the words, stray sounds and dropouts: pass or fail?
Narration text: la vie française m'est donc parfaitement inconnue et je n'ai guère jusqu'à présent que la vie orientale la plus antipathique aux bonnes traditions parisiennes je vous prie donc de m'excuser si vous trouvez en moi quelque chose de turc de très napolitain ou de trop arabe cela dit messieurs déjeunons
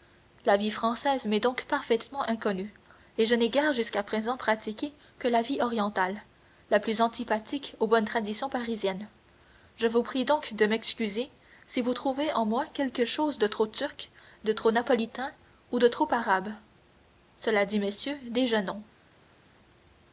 fail